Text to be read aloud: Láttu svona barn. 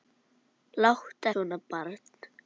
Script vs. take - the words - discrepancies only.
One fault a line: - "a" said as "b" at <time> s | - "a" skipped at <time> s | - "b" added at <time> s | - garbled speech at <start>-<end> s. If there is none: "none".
none